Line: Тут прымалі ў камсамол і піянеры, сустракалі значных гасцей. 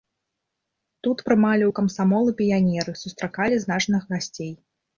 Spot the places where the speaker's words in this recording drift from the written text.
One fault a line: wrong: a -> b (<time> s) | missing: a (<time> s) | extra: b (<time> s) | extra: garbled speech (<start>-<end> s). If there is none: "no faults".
no faults